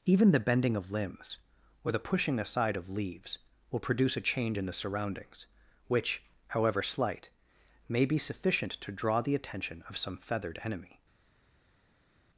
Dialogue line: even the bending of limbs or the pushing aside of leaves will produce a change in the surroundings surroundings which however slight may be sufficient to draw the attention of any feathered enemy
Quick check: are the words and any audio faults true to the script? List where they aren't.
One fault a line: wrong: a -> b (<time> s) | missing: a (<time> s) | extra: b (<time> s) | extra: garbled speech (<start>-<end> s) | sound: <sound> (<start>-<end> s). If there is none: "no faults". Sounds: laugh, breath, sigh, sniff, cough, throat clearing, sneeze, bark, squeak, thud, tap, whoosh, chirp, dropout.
missing: surroundings (5.5 s)
wrong: any -> some (10.0 s)